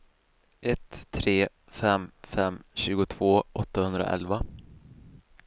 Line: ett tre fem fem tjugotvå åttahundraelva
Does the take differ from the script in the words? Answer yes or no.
no